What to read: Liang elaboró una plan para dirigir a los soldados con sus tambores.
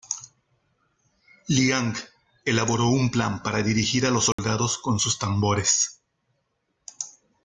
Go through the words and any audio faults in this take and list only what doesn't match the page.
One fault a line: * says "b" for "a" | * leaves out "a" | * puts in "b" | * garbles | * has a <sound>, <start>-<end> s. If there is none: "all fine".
* says "un" for "una"
* has a dropout, 4.3-4.4 s